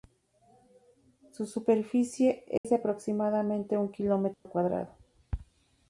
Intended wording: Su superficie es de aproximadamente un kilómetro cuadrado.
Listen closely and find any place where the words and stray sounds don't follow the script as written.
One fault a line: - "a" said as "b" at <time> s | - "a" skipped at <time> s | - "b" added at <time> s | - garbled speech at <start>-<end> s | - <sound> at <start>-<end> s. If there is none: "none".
- dropout at 2.6-2.6 s
- dropout at 4.3-4.5 s